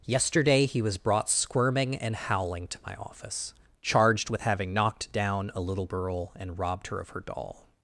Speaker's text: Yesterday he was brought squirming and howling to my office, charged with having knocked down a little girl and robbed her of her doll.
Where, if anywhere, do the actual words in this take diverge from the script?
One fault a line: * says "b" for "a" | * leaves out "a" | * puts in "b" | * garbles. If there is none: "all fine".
all fine